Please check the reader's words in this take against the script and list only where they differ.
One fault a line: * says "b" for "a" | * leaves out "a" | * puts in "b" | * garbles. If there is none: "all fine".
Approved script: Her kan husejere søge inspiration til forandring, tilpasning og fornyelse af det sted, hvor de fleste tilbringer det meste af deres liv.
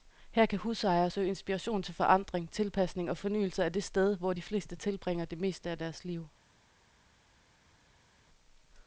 all fine